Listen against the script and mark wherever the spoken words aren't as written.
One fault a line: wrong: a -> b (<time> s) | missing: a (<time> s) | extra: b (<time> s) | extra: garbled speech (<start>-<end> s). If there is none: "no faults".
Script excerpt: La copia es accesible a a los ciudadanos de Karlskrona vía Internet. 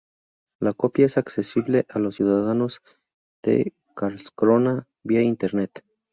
missing: a (2.0 s)